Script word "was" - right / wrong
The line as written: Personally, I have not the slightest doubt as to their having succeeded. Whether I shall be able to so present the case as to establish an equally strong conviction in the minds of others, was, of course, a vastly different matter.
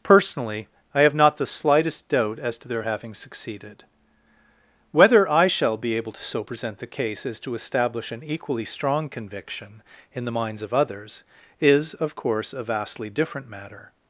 wrong